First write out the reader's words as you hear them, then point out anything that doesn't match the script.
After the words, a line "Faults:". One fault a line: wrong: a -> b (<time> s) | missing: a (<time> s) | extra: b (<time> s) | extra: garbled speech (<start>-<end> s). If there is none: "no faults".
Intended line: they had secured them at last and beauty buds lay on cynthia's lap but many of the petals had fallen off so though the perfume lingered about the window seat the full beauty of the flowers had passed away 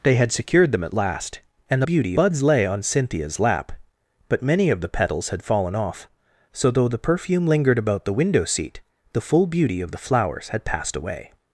they had secured them at last and beauty buds lay on cynthia's lap but many of the petals had fallen off so though the perfume lingered about the window seat the full beauty of the flowers had passed away
Faults:
no faults